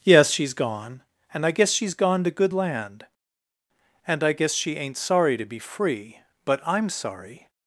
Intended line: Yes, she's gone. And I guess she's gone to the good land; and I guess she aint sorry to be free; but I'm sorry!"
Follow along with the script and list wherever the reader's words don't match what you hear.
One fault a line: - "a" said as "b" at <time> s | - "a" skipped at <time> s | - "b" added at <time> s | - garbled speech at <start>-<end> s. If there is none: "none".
- "the" skipped at 2.3 s